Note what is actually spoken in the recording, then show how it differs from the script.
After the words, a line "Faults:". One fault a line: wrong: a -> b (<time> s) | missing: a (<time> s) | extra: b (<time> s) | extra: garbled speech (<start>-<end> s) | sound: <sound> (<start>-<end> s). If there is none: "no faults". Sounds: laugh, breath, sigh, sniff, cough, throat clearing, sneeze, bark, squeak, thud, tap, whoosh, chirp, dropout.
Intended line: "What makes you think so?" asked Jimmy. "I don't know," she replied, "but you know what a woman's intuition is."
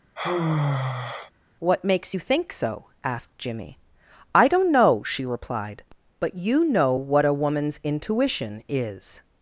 "What makes you think so?" asked Jimmy. "I don't know," she replied, "but you know what a woman's intuition is."
Faults:
sound: sigh (0.2-1.3 s)